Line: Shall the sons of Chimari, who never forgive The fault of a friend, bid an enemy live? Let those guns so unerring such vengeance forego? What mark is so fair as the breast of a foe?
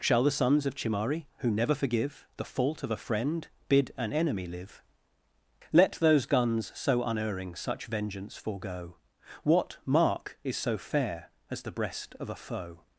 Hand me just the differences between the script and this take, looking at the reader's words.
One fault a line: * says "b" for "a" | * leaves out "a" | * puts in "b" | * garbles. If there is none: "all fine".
all fine